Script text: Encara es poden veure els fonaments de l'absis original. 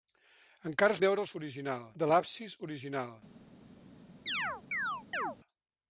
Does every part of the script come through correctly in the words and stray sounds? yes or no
no